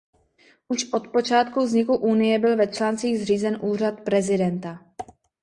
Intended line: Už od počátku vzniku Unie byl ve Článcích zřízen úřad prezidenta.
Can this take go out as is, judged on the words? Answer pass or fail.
pass